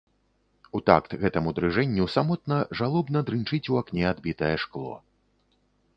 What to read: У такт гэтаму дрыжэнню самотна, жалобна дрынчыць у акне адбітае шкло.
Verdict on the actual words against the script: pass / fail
pass